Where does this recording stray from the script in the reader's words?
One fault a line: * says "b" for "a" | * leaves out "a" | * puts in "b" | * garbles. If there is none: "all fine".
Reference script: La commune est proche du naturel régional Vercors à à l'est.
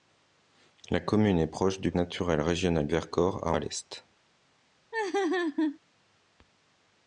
all fine